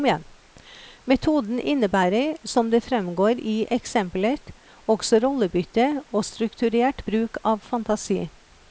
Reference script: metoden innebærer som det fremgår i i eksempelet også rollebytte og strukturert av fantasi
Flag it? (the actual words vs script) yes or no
yes